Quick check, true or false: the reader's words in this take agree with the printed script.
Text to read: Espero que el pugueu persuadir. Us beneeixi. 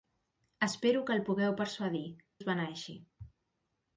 true